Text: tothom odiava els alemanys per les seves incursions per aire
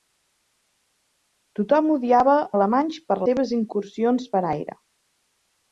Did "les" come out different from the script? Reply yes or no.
yes